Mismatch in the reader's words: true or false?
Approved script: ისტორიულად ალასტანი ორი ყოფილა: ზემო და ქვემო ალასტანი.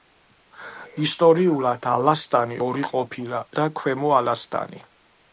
true